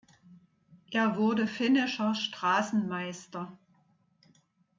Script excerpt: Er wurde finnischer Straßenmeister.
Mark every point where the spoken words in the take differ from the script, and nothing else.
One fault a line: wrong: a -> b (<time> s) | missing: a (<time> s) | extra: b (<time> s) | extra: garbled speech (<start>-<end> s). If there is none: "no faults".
no faults